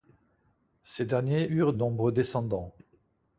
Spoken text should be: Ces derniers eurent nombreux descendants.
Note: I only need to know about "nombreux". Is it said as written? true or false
true